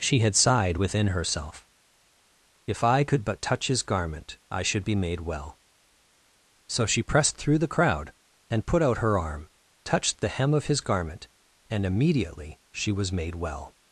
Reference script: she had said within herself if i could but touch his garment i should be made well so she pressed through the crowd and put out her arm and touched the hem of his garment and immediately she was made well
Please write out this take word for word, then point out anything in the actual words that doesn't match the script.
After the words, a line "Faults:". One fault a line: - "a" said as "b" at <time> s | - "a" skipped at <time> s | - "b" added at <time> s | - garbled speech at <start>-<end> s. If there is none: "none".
she had sighed within herself if i could but touch his garment i should be made well so she pressed through the crowd and put out her arm touched the hem of his garment and immediately she was made well
Faults:
- "said" said as "sighed" at 0.3 s
- "and" skipped at 9.5 s